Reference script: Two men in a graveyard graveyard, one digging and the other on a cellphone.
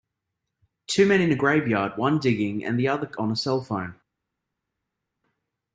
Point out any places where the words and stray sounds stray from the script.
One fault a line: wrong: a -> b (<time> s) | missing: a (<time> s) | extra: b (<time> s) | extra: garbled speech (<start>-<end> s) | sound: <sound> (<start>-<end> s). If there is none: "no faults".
missing: graveyard (2.0 s)